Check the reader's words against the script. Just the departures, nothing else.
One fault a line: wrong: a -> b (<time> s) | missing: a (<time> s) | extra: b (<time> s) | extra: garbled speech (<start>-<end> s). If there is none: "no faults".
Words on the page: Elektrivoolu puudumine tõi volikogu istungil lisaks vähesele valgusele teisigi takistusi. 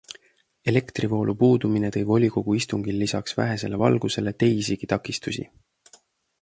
no faults